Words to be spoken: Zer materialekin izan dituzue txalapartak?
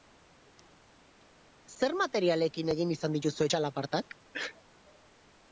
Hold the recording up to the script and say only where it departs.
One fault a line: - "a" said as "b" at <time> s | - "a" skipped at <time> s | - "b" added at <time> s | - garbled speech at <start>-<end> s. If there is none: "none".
- "egin" added at 2.8 s